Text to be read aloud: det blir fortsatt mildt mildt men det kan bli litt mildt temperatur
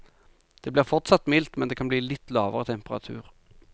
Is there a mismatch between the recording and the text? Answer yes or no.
yes